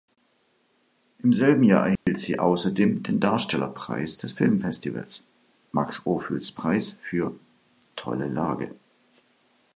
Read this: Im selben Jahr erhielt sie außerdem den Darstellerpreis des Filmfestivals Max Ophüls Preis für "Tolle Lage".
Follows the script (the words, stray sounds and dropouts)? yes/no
no